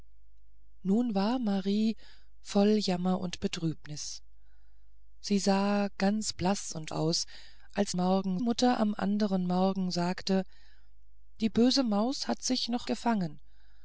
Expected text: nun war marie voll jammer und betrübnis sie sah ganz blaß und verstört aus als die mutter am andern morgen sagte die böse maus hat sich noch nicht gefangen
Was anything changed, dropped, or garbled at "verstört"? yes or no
yes